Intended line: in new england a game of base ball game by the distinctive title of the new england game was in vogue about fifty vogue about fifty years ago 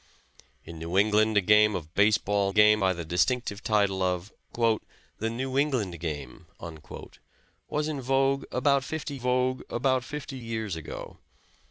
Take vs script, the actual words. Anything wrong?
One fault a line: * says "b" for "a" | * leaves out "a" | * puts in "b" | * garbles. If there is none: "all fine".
all fine